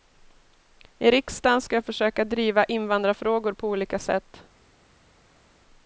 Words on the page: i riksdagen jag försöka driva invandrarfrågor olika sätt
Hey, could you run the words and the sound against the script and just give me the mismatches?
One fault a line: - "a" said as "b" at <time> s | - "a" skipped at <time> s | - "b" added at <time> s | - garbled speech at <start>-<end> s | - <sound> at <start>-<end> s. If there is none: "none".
- "ska" added at 1.6 s
- "på" added at 3.5 s